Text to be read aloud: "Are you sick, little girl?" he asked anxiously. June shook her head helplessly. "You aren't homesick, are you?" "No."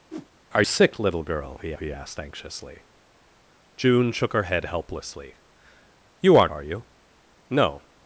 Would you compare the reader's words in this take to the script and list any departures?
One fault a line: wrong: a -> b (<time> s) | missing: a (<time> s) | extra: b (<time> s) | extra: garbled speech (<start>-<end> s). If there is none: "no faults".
missing: you (0.6 s)
extra: he (1.8 s)
missing: homesick (6.5 s)